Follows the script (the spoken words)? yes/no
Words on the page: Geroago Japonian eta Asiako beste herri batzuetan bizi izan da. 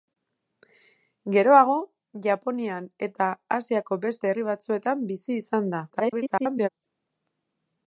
no